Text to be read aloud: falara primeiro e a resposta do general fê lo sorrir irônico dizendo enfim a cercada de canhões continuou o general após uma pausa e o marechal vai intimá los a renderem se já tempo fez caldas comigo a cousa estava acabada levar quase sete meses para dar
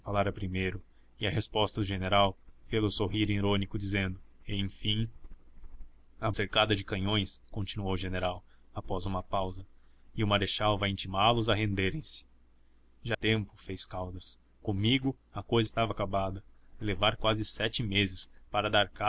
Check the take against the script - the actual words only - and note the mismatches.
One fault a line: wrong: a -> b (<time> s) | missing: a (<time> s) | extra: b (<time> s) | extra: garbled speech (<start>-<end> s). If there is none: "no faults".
no faults